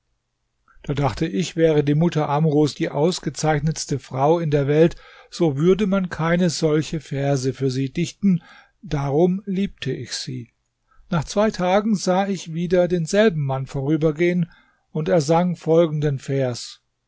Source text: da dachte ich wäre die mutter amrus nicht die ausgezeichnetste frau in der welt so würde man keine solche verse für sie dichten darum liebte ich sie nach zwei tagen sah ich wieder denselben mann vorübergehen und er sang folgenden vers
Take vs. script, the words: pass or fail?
fail